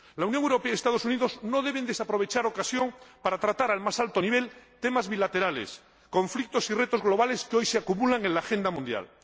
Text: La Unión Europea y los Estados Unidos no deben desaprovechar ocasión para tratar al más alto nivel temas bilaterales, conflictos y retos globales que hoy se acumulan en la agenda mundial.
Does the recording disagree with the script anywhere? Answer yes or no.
no